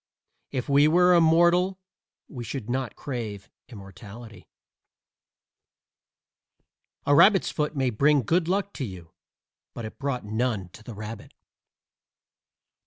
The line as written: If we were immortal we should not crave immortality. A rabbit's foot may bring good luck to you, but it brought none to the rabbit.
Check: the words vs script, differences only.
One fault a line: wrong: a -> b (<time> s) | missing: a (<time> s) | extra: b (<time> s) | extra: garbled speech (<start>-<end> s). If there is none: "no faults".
no faults